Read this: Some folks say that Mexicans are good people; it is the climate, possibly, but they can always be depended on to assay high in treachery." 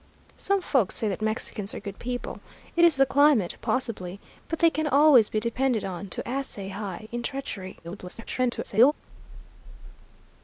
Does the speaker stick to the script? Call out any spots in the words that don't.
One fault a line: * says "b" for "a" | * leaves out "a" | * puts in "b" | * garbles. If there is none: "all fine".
* garbles